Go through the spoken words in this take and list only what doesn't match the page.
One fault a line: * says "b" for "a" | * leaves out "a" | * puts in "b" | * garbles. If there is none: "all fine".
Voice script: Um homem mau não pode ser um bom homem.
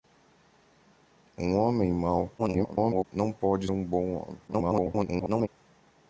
* garbles
* leaves out "ser"
* garbles